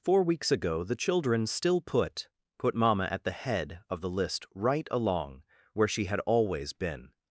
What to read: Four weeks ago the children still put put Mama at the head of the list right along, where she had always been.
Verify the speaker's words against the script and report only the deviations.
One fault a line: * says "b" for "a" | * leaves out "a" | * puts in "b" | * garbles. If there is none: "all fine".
all fine